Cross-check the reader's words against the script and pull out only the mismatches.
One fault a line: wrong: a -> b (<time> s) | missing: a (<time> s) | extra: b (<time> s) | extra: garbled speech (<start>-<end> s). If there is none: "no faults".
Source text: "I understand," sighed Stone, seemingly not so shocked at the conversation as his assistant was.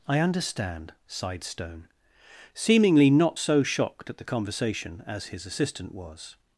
no faults